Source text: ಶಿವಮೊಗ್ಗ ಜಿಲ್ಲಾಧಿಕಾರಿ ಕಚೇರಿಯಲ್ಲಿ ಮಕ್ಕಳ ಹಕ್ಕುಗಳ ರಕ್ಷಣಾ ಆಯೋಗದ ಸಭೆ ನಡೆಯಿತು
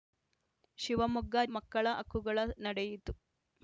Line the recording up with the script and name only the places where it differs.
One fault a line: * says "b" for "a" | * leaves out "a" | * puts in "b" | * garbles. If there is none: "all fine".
* leaves out "ಜಿಲ್ಲಾಧಿಕಾರಿ ಕಚೇರಿಯಲ್ಲಿ"
* leaves out "ರಕ್ಷಣಾ ಆಯೋಗದ ಸಭೆ"